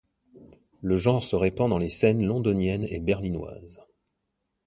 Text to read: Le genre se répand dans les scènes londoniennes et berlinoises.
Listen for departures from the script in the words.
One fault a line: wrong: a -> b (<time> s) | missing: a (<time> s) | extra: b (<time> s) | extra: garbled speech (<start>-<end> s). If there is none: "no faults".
no faults